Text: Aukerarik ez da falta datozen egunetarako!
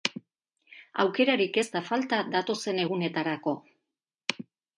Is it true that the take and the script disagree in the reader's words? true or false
false